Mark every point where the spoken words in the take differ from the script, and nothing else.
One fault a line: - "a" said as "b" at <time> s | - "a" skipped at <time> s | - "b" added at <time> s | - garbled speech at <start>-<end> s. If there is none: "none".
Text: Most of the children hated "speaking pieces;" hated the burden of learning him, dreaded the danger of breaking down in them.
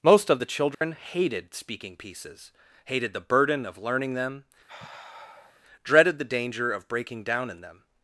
- "him" said as "them" at 4.1 s